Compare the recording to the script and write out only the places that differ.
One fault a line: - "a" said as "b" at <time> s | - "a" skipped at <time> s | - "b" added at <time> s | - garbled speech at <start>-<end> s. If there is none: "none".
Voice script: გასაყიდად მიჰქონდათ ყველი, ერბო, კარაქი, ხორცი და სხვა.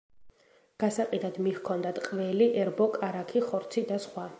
none